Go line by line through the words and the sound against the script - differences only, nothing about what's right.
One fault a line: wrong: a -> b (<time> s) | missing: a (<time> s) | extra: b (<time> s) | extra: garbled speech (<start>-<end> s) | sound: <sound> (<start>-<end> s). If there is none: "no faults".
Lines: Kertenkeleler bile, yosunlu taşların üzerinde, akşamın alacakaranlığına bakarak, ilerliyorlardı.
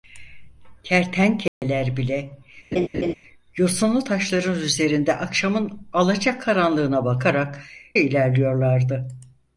sound: dropout (1.5-1.6 s)
sound: laugh (2.7-3.1 s)